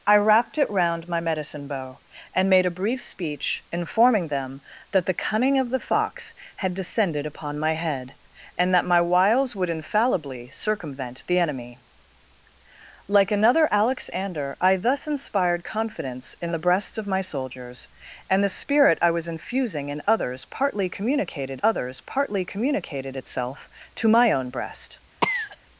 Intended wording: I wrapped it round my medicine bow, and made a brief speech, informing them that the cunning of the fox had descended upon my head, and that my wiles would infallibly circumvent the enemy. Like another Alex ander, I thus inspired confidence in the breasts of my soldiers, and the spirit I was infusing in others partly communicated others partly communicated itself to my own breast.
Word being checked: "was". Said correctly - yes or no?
yes